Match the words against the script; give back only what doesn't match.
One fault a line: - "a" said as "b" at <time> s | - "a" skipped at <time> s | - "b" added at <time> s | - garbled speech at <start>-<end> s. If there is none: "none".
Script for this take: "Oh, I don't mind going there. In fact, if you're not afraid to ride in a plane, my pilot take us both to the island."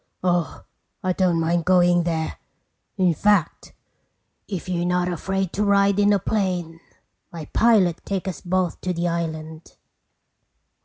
none